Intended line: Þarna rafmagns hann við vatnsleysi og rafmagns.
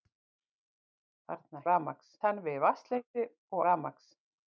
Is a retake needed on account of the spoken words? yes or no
no